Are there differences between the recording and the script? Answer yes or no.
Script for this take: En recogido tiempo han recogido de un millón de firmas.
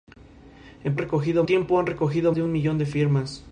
no